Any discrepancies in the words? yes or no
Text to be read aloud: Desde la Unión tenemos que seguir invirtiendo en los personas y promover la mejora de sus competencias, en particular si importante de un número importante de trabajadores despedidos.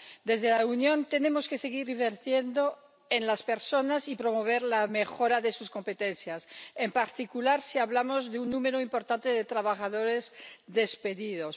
yes